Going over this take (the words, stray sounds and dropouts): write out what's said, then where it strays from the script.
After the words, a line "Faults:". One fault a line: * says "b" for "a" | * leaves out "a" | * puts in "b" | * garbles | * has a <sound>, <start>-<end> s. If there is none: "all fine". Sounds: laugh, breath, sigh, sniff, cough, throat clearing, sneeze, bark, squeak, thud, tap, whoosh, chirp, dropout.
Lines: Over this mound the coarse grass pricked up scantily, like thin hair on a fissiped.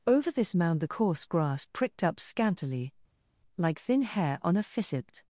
Over this mound the coarse grass pricked up scantily, like thin hair on a fissiped.
Faults:
all fine